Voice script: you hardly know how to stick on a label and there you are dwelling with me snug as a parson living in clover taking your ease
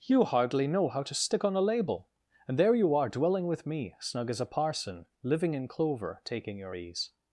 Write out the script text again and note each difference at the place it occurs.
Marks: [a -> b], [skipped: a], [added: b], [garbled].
you hardly know how to stick on a label and there you are dwelling with me snug as a parson living in clover taking your ease